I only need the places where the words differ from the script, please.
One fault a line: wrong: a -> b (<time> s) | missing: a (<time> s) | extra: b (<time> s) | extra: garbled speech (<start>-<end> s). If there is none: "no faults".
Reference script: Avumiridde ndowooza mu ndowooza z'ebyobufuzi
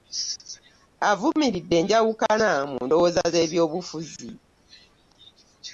wrong: ndowooza -> enjawukana (1.8 s)